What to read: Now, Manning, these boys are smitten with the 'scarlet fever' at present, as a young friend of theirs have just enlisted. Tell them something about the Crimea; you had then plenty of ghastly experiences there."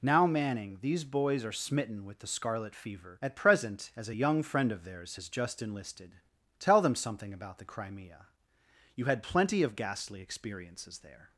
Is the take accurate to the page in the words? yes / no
no